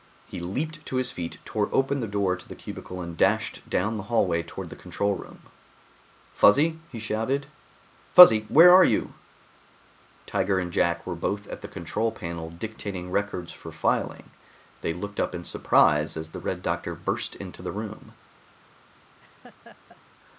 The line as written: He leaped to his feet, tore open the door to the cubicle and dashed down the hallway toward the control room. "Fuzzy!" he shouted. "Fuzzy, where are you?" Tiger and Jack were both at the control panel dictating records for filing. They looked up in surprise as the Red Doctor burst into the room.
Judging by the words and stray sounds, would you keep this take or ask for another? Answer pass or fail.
fail